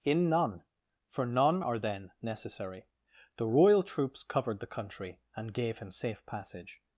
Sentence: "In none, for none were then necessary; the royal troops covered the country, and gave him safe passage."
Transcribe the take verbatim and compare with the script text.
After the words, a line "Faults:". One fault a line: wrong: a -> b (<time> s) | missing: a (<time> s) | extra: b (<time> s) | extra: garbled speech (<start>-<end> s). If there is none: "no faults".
"In none, for none are then necessary; the royal troops covered the country, and gave him safe passage."
Faults:
wrong: were -> are (1.6 s)